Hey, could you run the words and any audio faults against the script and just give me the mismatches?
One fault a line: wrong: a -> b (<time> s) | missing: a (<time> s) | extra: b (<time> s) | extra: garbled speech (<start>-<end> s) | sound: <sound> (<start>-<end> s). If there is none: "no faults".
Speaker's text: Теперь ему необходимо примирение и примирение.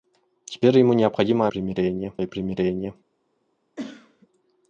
sound: cough (3.8-4.3 s)